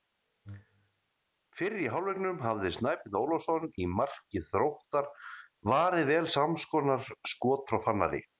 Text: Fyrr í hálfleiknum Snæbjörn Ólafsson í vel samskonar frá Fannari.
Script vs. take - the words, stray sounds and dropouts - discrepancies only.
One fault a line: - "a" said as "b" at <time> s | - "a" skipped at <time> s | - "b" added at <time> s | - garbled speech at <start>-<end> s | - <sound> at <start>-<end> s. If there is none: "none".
- "hafði" added at 2.5 s
- "marki Þróttar varið" added at 4.0 s
- "skot" added at 7.3 s